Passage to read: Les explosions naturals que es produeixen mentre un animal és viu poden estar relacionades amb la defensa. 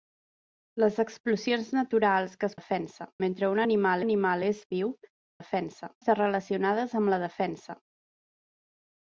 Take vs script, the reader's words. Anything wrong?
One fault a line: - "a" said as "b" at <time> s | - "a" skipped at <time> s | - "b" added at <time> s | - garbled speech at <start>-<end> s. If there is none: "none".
- "produeixen" said as "defensa" at 2.6 s
- "animal" added at 4.0 s
- "poden" said as "defensa" at 5.4 s